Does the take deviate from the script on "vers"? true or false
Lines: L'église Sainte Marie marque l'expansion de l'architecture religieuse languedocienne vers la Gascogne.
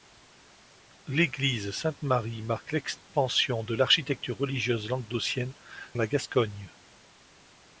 true